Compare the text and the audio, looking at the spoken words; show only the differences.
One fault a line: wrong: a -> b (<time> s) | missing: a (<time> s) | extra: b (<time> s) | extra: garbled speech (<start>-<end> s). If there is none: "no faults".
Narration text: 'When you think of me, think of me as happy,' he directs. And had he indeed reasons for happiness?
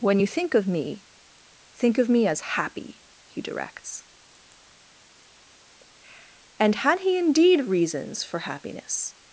no faults